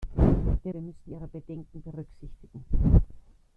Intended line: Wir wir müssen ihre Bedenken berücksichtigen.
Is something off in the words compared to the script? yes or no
no